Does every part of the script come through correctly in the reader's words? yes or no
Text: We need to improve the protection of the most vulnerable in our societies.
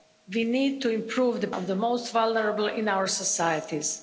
no